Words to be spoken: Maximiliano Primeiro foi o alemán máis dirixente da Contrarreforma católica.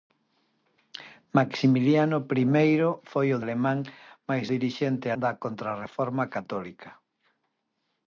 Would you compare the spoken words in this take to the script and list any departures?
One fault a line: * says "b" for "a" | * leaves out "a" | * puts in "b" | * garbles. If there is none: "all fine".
all fine